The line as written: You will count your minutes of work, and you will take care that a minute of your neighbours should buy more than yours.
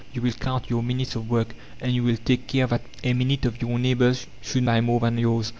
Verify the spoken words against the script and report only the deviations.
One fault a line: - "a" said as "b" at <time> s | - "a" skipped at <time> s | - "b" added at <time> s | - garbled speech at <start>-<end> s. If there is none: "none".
none